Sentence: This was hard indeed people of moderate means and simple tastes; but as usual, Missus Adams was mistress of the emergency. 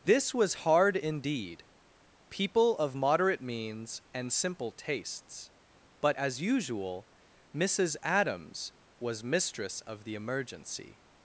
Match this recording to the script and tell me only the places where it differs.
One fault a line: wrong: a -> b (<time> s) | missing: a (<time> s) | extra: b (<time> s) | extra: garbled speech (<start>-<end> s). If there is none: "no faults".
no faults